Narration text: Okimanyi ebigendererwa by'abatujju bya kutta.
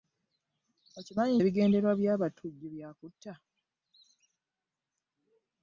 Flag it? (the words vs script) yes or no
no